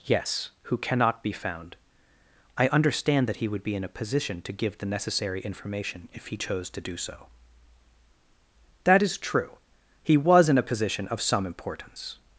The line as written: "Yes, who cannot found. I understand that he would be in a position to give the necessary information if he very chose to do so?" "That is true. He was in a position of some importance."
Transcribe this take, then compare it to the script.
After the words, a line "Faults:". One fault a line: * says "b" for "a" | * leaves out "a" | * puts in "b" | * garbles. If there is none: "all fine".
"Yes, who cannot be found. I understand that he would be in a position to give the necessary information if he chose to do so?" "That is true. He was in a position of some importance."
Faults:
* puts in "be"
* leaves out "very"